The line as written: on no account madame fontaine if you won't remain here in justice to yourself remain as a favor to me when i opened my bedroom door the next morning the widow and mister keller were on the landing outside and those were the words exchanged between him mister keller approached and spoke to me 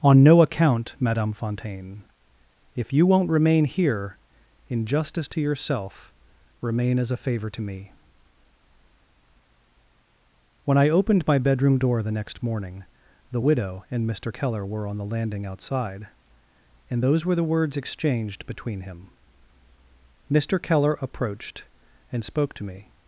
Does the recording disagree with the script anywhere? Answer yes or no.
no